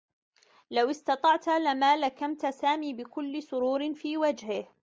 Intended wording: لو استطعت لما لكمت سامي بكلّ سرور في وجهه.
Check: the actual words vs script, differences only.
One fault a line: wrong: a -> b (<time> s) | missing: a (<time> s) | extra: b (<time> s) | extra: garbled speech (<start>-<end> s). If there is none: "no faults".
no faults